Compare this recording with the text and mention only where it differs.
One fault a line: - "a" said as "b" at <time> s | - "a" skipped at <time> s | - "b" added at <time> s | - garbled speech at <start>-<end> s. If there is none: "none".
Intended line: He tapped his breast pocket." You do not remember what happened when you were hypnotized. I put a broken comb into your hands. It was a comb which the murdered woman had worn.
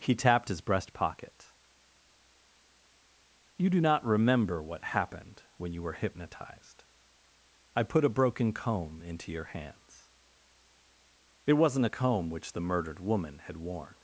- "was" said as "wasn't" at 11.5 s